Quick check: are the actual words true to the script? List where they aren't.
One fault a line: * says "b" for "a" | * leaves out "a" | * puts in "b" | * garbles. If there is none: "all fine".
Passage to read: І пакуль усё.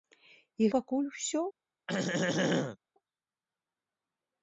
all fine